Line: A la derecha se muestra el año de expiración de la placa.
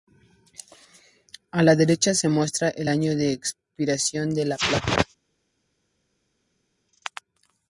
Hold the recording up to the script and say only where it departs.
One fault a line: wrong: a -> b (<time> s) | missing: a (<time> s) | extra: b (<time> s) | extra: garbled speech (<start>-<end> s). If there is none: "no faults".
no faults